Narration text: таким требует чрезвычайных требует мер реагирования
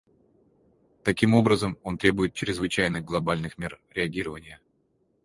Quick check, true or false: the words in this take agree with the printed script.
false